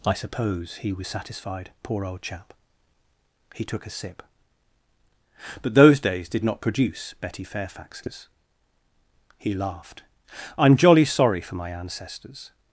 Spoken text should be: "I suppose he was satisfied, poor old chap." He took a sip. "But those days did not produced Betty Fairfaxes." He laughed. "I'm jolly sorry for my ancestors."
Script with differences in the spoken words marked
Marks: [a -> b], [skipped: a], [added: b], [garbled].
"I suppose he was satisfied, poor old chap." He took a sip. "But those days did not [produced -> produce] Betty Fairfaxes." He laughed. "I'm jolly sorry for my ancestors."